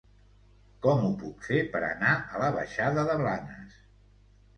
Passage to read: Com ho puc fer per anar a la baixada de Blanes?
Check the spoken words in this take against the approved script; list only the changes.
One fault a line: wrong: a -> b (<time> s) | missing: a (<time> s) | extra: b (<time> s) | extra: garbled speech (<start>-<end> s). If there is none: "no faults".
no faults